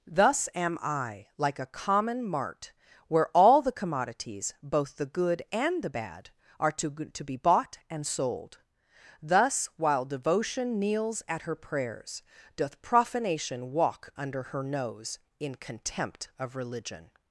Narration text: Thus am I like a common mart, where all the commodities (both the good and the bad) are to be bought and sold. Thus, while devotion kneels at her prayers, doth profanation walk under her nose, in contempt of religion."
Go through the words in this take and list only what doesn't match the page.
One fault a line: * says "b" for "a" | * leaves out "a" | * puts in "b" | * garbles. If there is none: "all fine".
* puts in "to"